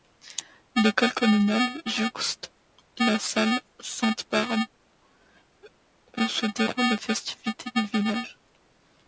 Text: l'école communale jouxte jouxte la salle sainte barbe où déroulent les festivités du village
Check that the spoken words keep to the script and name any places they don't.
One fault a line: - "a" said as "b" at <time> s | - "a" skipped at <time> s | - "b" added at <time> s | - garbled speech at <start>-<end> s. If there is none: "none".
- "jouxte" skipped at 2.5 s
- "se" added at 6.3 s